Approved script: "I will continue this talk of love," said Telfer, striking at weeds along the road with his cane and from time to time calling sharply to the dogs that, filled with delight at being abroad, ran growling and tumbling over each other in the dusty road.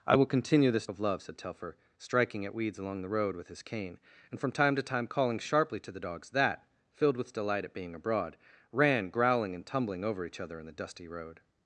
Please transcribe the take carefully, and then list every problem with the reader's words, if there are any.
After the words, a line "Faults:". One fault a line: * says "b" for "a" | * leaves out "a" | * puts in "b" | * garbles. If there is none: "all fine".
"I will continue this of love," said Telfer, striking at weeds along the road with his cane and from time to time calling sharply to the dogs that, filled with delight at being abroad, ran growling and tumbling over each other in the dusty road.
Faults:
* leaves out "talk"